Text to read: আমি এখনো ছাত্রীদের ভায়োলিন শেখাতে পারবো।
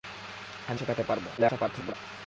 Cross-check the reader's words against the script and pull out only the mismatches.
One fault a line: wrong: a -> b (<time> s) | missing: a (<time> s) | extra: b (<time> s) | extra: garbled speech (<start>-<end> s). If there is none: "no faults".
missing: এখনো ছাত্রীদের ভায়োলিন (0.8 s)
extra: garbled speech (1.4-1.9 s)